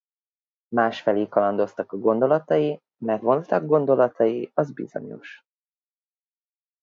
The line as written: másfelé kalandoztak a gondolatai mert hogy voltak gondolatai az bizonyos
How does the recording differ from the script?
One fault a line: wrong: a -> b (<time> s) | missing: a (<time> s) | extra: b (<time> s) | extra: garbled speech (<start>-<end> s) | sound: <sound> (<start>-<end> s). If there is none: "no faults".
missing: hogy (3.2 s)